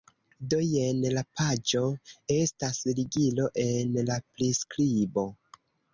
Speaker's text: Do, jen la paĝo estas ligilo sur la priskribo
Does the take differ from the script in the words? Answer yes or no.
yes